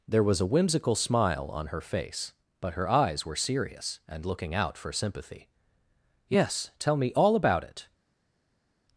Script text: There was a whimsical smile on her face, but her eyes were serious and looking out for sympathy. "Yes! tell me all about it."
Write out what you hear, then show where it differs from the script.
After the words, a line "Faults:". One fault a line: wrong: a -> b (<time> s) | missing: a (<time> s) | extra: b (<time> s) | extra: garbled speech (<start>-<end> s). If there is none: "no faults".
There was a whimsical smile on her face, but her eyes were serious and looking out for sympathy. "Yes! tell me all about it."
Faults:
no faults